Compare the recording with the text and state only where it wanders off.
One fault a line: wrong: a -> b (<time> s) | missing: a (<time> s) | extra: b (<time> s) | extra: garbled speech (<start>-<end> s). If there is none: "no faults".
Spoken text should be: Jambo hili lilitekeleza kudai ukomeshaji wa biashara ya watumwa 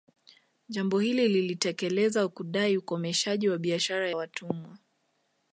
missing: ya (4.1 s)